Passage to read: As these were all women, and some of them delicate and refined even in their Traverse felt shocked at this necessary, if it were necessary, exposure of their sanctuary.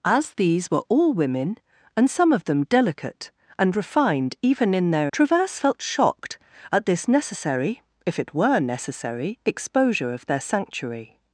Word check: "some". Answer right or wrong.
right